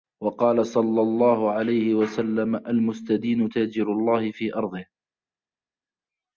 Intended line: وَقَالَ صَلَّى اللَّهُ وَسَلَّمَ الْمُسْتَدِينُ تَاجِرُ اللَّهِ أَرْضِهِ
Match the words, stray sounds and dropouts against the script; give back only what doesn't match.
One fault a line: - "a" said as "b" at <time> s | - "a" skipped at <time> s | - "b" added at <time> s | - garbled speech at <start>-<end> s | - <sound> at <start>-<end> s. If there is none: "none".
- "عَلَيْهِ" added at 1.5 s
- "فِي" added at 4.3 s